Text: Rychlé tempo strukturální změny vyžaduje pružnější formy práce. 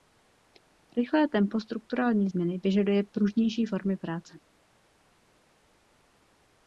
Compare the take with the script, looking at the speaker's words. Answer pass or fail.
pass